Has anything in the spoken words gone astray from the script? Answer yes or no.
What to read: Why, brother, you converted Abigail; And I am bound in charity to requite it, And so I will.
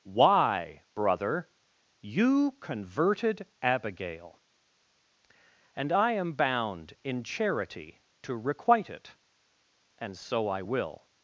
no